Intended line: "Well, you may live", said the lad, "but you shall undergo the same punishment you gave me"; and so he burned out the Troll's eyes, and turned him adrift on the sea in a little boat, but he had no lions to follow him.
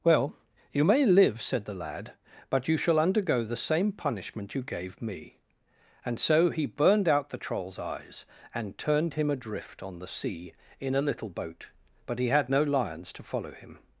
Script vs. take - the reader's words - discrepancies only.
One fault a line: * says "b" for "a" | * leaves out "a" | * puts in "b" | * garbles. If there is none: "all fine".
all fine